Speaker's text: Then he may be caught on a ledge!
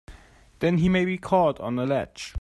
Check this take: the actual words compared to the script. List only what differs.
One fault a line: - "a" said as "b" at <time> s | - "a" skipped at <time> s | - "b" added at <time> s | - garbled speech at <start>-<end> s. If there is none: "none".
none